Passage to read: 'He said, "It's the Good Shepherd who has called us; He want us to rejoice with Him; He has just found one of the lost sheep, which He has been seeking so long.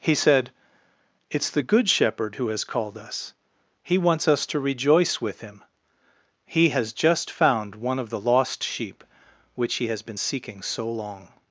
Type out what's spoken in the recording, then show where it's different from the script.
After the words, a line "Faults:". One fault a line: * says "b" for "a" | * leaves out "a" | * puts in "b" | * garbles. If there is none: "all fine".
'He said, "It's the Good Shepherd who has called us; He wants us to rejoice with Him; He has just found one of the lost sheep, which He has been seeking so long.
Faults:
* says "wants" for "want"